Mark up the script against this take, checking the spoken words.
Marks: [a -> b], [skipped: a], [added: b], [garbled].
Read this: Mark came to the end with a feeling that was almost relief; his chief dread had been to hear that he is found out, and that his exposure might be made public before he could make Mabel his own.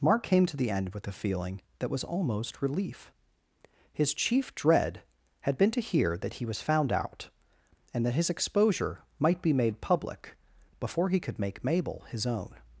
Mark came to the end with a feeling that was almost relief; his chief dread had been to hear that he [is -> was] found out, and that his exposure might be made public before he could make Mabel his own.